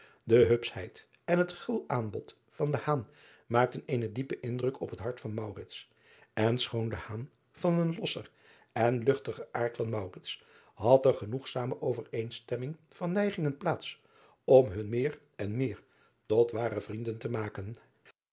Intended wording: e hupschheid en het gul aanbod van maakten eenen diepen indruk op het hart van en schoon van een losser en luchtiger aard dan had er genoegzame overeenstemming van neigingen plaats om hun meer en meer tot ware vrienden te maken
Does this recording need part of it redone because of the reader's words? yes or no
no